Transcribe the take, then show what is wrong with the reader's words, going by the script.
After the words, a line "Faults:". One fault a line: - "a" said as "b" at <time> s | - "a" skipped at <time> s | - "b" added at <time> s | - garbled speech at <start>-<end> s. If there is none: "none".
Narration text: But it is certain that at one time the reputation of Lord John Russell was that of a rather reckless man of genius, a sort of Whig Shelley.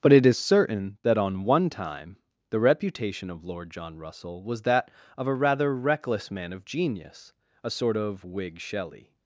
But it is certain that on one time the reputation of Lord John Russell was that of a rather reckless man of genius, a sort of Whig Shelley.
Faults:
- "at" said as "on" at 1.2 s